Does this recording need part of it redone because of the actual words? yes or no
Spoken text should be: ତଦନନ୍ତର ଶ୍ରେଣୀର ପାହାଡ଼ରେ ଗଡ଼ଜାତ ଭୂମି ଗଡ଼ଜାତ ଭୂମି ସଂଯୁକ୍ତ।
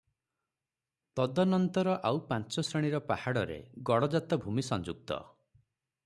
yes